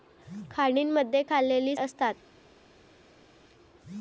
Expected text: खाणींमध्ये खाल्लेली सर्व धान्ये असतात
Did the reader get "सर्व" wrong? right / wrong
wrong